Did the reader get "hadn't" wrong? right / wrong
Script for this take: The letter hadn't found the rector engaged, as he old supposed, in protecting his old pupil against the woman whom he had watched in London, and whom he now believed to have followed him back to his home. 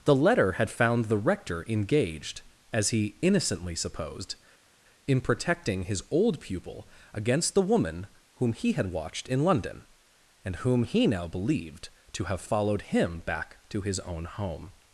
wrong